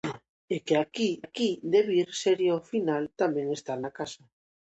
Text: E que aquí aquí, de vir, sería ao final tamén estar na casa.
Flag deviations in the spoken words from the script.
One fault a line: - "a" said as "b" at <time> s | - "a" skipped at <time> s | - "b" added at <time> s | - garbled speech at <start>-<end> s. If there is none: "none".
none